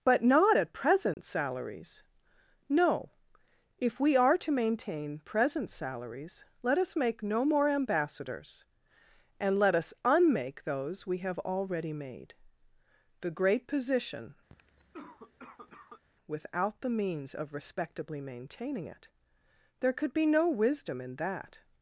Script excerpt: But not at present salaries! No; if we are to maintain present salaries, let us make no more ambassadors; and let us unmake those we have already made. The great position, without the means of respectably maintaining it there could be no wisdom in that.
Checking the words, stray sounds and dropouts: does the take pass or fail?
fail